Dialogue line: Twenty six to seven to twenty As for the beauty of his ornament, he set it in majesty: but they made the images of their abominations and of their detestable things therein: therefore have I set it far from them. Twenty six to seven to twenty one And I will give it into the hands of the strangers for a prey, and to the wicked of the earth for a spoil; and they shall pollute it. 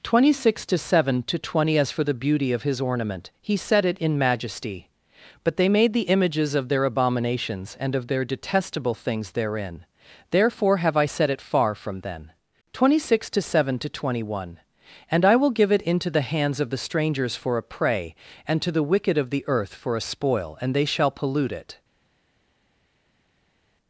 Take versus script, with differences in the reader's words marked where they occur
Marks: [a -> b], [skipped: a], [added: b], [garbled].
Twenty six to seven to twenty As for the beauty of his ornament, he set it in majesty: but they made the images of their abominations and of their detestable things therein: therefore have I set it far from [them. -> then] Twenty six to seven to twenty one And I will give it into the hands of the strangers for a prey, and to the wicked of the earth for a spoil; and they shall pollute it.